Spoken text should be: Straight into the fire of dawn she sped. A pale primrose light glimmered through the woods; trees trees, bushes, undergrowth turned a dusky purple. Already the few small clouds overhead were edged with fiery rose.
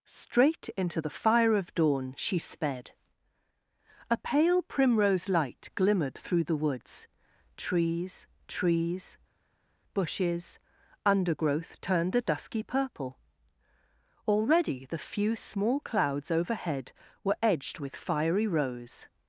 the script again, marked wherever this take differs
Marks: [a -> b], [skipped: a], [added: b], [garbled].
Straight into the fire of dawn she sped. A pale primrose light glimmered through the woods; trees trees, bushes, undergrowth turned a dusky purple. Already the few small clouds overhead were edged with fiery rose.